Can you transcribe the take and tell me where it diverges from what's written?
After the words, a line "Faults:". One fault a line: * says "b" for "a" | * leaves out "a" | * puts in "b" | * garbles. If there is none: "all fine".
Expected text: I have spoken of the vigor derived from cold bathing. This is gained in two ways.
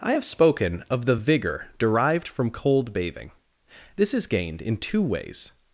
I have spoken of the vigor derived from cold bathing. This is gained in two ways.
Faults:
all fine